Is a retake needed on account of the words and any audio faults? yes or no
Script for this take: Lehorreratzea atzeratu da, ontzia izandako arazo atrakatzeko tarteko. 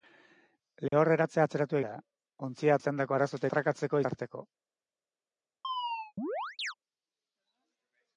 yes